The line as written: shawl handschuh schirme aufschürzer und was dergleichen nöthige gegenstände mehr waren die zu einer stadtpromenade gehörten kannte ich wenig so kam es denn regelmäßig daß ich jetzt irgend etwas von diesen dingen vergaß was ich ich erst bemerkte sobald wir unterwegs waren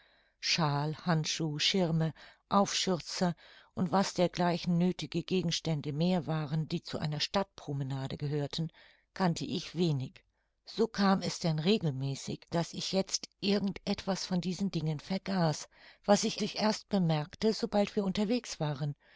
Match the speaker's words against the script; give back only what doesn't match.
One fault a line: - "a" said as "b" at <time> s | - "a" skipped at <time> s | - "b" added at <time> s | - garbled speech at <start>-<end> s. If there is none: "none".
none